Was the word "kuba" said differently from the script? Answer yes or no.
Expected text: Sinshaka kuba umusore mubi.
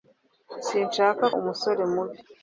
yes